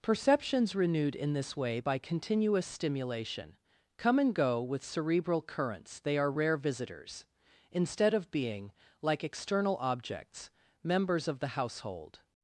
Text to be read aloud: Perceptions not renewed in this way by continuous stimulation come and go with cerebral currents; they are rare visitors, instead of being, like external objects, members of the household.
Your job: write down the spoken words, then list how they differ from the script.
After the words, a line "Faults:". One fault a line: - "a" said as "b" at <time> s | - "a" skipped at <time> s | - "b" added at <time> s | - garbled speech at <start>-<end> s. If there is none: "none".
Perceptions renewed in this way by continuous stimulation come and go with cerebral currents; they are rare visitors, instead of being, like external objects, members of the household.
Faults:
- "not" skipped at 0.7 s